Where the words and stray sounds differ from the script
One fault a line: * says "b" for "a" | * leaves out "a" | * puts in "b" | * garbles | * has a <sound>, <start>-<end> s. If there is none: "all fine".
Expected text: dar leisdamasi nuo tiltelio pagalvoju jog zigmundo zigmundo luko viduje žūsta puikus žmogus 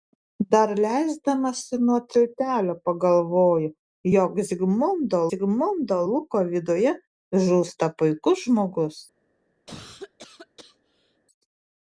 * has a cough, 9.7-11.2 s